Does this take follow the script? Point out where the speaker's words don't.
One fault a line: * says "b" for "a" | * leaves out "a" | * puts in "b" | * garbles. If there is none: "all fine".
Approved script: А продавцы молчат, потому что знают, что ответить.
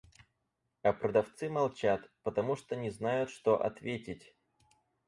* puts in "не"